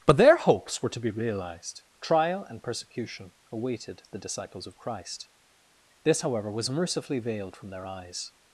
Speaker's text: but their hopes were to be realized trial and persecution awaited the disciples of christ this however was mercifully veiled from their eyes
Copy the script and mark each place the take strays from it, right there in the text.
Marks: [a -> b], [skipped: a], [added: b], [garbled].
but their hopes were to be realized trial and persecution awaited the disciples of christ this however was mercifully veiled from their eyes